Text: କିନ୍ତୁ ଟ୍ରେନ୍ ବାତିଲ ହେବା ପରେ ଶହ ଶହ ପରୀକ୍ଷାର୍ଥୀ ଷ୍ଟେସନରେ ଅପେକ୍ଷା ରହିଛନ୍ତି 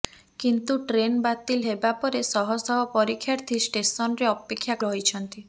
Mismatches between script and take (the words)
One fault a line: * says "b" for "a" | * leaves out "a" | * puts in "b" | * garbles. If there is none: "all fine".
all fine